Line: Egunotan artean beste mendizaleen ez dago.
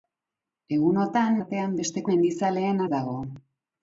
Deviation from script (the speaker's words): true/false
false